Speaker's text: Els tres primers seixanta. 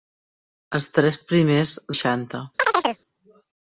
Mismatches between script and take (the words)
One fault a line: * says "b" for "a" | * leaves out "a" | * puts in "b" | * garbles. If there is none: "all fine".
all fine